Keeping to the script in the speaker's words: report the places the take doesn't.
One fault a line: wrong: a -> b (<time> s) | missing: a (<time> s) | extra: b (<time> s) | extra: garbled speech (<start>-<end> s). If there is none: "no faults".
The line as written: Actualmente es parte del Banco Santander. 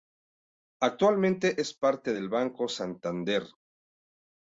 no faults